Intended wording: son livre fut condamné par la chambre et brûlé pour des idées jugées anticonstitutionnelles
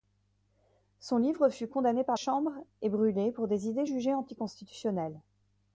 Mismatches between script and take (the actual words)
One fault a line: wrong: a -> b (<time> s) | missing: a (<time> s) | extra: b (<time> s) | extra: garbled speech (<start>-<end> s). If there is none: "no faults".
missing: la (2.2 s)